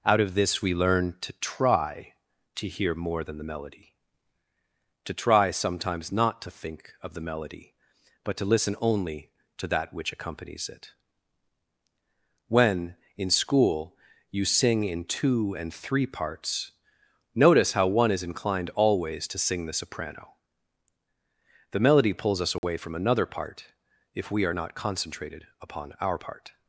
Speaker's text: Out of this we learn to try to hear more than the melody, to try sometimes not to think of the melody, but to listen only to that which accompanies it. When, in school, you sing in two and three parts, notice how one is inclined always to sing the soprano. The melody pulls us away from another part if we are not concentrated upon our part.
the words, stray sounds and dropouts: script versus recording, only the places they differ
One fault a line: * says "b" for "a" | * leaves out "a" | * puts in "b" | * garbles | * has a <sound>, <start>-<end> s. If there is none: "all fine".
* has a dropout, 22.6-22.6 s